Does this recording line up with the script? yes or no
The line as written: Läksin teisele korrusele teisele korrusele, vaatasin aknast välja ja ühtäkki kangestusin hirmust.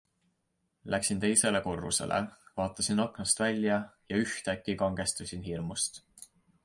no